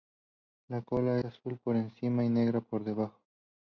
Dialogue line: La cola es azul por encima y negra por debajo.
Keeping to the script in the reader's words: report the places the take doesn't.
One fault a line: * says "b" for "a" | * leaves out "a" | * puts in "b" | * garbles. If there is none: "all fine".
* leaves out "es"